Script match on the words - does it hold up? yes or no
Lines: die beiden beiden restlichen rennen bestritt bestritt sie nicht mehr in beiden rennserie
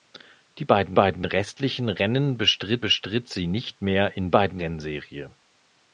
yes